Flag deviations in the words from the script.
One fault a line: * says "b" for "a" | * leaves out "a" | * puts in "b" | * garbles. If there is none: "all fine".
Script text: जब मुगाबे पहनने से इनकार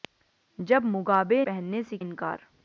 all fine